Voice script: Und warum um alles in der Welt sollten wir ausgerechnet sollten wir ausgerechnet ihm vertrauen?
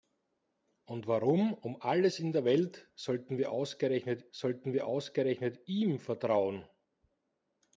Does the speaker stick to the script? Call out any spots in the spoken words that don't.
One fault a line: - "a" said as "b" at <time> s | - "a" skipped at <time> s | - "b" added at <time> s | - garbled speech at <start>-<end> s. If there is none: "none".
none